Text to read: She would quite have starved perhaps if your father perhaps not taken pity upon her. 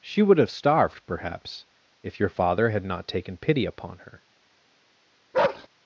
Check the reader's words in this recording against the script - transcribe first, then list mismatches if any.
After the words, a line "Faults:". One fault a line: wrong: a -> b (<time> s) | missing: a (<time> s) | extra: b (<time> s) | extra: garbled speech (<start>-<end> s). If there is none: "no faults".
She would have starved perhaps if your father had not taken pity upon her.
Faults:
missing: quite (0.4 s)
wrong: perhaps -> had (2.7 s)